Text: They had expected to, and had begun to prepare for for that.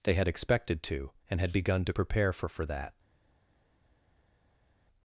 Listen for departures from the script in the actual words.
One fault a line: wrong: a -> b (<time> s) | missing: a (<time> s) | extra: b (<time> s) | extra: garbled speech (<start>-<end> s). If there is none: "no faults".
no faults